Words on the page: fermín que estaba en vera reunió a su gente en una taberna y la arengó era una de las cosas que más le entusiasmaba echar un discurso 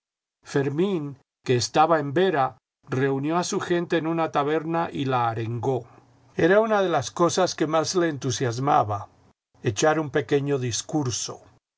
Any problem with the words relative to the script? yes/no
yes